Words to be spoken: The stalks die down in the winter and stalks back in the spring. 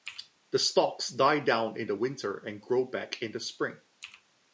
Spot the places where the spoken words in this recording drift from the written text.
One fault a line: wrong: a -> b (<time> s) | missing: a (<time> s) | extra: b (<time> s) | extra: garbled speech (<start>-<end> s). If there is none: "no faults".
wrong: stalks -> grow (2.6 s)